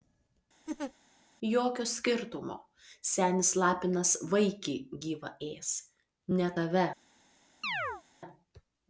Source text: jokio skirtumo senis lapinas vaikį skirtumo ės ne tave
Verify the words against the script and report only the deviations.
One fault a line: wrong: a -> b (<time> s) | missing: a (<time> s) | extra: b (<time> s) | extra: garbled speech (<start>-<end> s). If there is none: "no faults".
wrong: skirtumo -> gyvą (5.0 s)